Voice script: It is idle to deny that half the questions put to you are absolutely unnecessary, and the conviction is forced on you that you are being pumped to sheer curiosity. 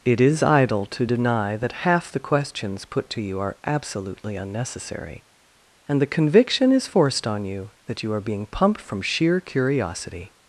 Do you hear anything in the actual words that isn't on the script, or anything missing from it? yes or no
yes